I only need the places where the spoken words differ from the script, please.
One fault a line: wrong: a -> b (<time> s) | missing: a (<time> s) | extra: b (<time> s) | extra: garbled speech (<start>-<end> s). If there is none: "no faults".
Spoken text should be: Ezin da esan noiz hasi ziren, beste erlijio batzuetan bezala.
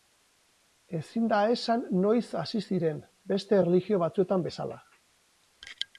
no faults